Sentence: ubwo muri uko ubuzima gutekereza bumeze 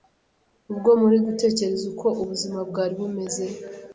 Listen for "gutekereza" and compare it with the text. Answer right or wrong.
wrong